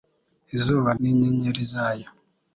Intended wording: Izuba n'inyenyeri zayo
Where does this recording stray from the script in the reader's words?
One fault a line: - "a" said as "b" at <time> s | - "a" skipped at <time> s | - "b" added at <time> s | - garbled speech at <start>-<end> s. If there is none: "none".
none